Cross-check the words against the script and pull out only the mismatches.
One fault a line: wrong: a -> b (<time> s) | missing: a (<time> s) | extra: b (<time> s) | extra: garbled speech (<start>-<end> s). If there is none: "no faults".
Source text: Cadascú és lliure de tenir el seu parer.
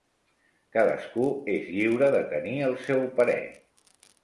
no faults